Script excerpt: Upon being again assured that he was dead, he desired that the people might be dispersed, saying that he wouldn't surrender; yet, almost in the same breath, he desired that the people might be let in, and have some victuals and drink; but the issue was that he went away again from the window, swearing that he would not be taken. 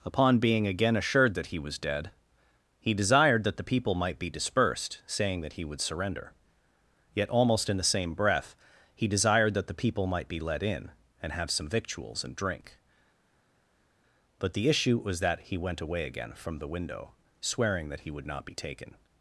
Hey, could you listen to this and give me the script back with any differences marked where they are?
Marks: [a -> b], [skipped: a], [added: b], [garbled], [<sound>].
Upon being again assured that he was dead, he desired that the people might be dispersed, saying that he [wouldn't -> would] surrender; yet, almost in the same breath, he desired that the people might be let in, and have some victuals and drink; but the issue was that he went away again from the window, swearing that he would not be taken.